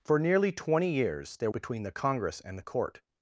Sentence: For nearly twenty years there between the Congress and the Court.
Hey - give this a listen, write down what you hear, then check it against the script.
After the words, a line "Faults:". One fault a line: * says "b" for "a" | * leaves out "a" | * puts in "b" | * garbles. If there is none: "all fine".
For nearly twenty years there between the Congress and the Court.
Faults:
all fine